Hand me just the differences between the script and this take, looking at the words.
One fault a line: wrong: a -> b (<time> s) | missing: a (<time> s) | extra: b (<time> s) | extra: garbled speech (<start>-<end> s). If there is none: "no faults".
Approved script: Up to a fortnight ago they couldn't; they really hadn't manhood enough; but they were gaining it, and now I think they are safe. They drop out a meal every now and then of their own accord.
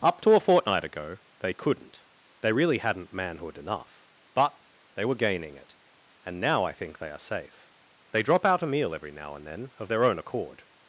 no faults